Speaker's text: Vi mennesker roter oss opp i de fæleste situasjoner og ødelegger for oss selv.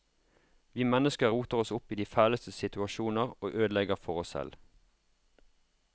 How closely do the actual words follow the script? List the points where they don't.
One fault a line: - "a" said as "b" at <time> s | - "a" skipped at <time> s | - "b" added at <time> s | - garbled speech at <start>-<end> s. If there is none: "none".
none